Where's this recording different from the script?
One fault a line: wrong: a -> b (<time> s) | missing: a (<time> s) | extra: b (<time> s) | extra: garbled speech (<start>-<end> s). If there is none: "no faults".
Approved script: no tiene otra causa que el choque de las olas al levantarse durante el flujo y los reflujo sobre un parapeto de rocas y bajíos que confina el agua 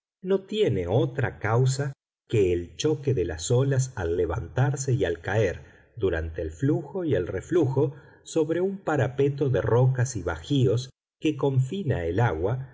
extra: y al caer (4.9 s)
wrong: los -> el (7.1 s)